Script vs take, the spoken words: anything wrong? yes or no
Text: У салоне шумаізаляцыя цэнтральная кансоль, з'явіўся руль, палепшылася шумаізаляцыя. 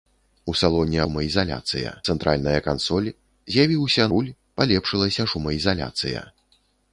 no